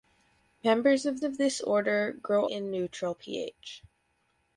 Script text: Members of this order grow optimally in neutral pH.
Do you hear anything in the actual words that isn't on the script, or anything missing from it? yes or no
yes